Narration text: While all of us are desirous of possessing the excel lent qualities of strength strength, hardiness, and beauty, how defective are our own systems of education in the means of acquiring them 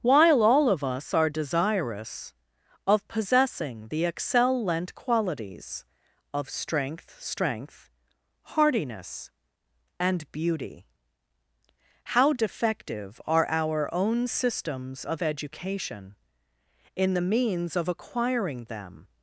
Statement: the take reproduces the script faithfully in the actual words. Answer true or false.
true